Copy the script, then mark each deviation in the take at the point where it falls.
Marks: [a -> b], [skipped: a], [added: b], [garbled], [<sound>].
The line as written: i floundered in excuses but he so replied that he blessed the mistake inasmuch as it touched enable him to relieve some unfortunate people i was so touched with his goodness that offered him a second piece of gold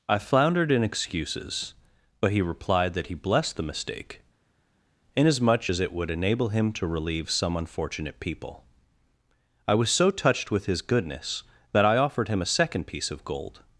i floundered in excuses but he [skipped: so] replied that he blessed the mistake inasmuch as it [touched -> would] enable him to relieve some unfortunate people i was so touched with his goodness that [added: i] offered him a second piece of gold